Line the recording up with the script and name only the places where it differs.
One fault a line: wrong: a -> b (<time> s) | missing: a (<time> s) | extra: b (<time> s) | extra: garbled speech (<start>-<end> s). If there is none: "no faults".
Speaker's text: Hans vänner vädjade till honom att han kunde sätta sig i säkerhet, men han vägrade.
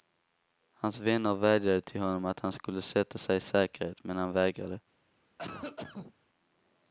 wrong: kunde -> skulle (2.5 s)